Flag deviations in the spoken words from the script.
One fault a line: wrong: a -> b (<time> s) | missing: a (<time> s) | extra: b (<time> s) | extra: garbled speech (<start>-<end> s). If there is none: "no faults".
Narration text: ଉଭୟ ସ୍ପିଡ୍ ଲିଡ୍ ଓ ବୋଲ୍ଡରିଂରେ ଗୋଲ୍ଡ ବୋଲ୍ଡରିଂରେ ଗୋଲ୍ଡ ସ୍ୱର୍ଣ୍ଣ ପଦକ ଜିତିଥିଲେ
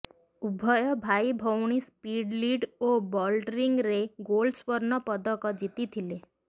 extra: ଭାଇ ଭଉଣୀ (1.0 s)
missing: ବୋଲ୍ଡରିଂରେ ଗୋଲ୍ଡ (4.6 s)